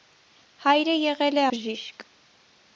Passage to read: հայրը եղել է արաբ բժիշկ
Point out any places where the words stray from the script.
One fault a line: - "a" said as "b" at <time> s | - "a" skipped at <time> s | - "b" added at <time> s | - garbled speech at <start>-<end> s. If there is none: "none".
- "արաբ" skipped at 1.4 s